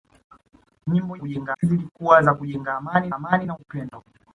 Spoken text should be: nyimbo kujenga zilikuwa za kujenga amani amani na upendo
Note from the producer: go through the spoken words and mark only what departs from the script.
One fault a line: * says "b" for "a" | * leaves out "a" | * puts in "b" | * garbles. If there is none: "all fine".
all fine